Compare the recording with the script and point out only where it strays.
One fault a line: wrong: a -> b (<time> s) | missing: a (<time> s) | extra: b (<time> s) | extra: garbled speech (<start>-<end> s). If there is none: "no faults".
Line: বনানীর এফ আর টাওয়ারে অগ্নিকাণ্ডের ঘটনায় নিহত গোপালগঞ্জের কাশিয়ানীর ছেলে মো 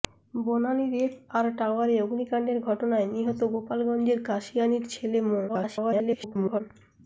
extra: garbled speech (5.5-6.6 s)